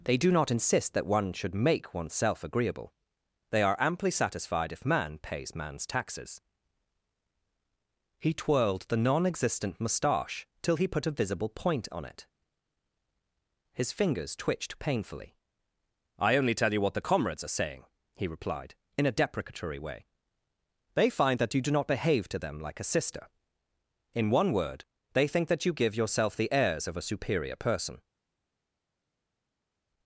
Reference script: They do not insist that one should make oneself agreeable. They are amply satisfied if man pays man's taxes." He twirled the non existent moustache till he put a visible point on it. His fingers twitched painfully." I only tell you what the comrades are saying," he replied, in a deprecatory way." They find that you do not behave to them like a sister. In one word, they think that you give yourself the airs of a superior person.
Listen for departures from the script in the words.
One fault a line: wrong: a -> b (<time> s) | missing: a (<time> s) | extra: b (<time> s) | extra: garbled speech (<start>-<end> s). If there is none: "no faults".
no faults